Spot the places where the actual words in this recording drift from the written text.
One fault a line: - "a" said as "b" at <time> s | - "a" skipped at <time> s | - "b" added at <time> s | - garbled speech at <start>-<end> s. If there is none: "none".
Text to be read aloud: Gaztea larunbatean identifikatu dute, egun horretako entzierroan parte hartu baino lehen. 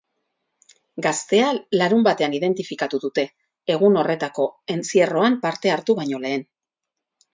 none